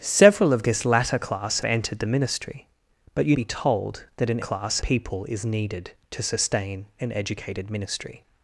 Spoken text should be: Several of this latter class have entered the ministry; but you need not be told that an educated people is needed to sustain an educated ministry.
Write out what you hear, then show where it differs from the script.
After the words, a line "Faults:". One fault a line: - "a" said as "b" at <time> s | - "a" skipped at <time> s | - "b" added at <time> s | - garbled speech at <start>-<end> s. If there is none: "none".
Several of this latter class entered the ministry; but you be told that an class people is needed to sustain an educated ministry.
Faults:
- "have" skipped at 1.6 s
- "need not" skipped at 3.4 s
- "educated" said as "class" at 4.4 s